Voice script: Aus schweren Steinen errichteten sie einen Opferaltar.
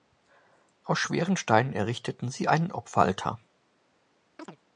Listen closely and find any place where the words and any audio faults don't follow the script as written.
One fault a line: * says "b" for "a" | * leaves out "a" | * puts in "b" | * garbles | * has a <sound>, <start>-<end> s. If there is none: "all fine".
* has a chirp, 4.4-4.6 s